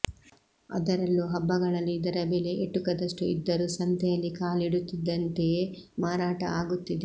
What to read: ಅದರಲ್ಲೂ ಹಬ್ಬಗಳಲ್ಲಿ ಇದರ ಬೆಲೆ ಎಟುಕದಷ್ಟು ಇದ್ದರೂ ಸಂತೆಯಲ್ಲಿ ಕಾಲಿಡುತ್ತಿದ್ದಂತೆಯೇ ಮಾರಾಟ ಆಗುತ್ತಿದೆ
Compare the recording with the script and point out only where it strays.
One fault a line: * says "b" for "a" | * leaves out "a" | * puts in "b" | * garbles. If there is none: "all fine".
all fine